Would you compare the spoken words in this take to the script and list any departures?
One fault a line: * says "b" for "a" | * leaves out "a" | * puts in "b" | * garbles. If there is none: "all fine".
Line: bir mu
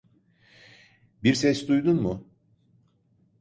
* puts in "ses duydun"